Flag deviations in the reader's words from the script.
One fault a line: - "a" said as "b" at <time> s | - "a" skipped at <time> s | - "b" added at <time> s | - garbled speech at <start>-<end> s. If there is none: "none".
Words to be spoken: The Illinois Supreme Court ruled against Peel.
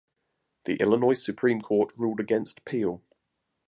none